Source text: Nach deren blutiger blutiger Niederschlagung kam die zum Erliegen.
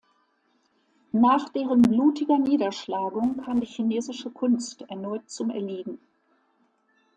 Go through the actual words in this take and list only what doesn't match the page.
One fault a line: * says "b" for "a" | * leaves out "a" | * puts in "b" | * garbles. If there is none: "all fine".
* leaves out "blutiger"
* puts in "chinesische Kunst erneut"